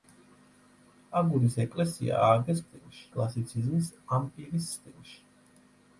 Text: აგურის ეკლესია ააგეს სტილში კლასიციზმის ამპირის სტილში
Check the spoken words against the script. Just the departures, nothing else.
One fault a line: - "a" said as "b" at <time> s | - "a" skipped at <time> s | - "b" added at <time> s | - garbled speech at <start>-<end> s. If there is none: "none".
none